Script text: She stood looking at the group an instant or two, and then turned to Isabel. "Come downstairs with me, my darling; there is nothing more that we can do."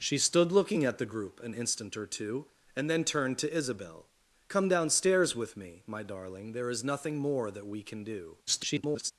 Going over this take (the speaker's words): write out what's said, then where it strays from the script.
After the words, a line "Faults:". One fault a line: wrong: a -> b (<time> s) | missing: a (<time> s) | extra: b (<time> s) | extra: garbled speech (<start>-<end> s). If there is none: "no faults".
She stood looking at the group an instant or two, and then turned to Isabel. "Come downstairs with me, my darling; there is nothing more that we can do." [garbled]
Faults:
extra: garbled speech (8.5-9.1 s)